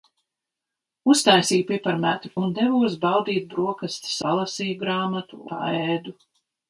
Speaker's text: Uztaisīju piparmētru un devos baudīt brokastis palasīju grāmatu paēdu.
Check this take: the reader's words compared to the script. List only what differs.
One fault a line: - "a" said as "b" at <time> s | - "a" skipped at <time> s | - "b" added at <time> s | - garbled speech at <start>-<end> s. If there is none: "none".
none